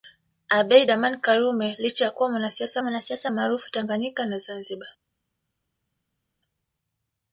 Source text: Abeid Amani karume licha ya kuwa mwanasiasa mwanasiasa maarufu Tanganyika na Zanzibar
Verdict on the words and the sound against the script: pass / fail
pass